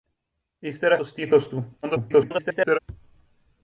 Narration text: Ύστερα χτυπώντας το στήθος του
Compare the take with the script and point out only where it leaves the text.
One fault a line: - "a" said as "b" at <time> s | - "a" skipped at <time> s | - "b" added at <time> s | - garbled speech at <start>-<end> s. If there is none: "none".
- "χτυπώντας" skipped at 1.0 s
- garbled speech at 1.8-2.8 s